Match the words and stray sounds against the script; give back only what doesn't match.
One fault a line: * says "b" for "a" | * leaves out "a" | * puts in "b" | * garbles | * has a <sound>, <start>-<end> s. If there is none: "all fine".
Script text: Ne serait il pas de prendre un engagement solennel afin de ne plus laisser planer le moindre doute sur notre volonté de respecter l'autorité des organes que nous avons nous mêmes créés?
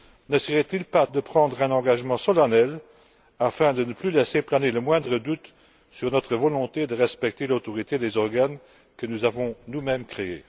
all fine